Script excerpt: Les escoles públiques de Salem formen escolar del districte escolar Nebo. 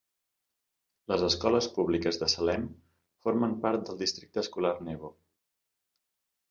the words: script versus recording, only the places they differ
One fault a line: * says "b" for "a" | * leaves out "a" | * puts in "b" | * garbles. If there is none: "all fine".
* says "part" for "escolar"